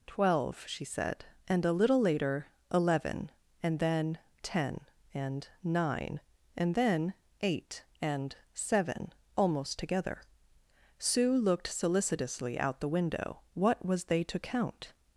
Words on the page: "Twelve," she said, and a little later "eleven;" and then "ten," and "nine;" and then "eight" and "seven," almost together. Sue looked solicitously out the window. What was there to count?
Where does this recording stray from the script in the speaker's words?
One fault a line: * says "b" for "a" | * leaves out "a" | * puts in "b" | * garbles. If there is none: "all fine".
* says "they" for "there"